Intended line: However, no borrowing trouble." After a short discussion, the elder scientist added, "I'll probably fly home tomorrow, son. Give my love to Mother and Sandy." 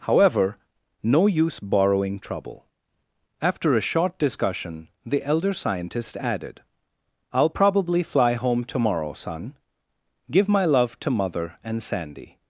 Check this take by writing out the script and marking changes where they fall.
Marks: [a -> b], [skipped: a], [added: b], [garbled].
However, no [added: use] borrowing trouble." After a short discussion, the elder scientist added, "I'll probably fly home tomorrow, son. Give my love to Mother and Sandy."